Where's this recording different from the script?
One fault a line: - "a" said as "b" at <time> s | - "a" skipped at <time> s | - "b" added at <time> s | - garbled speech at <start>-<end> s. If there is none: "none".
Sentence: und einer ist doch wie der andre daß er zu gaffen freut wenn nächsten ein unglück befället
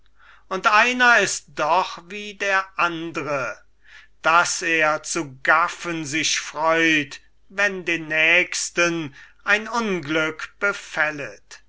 - "sich" added at 6.0 s
- "den" added at 7.8 s